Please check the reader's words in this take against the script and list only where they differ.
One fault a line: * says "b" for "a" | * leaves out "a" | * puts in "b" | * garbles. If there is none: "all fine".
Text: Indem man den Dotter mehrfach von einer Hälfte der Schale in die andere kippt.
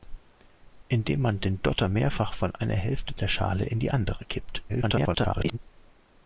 * garbles